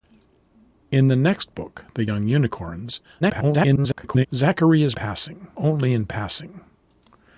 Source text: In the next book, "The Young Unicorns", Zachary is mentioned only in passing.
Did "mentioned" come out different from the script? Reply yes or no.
yes